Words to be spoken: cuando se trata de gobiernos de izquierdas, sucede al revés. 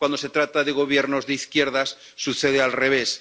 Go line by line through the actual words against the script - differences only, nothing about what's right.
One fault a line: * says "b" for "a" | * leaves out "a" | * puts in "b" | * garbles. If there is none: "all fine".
all fine